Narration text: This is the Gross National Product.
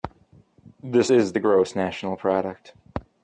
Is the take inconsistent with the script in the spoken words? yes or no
no